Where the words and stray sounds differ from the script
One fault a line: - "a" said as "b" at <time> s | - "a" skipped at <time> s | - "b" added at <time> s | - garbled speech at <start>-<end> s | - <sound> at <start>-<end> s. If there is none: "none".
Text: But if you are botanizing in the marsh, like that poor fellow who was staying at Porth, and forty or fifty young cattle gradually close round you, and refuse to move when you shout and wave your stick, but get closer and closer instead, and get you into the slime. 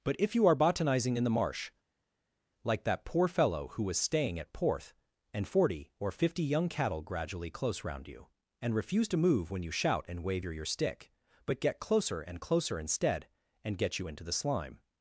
- "your" added at 10.5 s